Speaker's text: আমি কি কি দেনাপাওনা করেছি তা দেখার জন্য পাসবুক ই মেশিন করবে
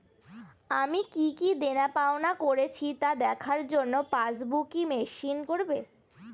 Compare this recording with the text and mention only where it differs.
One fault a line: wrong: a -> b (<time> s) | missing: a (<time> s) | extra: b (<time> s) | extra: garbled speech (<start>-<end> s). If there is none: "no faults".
no faults